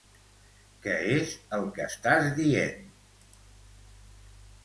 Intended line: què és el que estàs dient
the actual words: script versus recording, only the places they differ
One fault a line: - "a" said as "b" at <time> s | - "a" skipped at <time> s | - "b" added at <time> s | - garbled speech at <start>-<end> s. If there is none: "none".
none